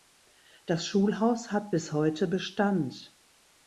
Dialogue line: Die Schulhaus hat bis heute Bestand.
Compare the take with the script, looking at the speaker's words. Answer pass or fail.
fail